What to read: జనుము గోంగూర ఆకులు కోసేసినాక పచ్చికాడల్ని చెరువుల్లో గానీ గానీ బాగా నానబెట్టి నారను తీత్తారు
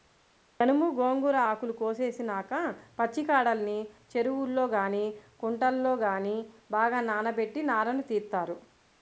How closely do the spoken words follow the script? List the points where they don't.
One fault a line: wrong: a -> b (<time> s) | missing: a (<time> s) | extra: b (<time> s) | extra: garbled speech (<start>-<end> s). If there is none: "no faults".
extra: కుంటల్లో (5.4 s)